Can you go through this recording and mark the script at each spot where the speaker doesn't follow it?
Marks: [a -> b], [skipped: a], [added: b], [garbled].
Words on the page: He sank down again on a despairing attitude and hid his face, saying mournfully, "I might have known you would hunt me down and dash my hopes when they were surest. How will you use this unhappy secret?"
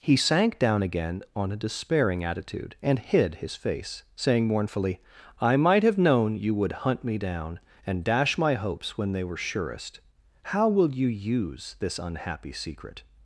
He sank down again on a despairing attitude and hid his face, saying mournfully, "I might have known you would hunt me down and dash my hopes when they were surest. How will you use this unhappy secret?"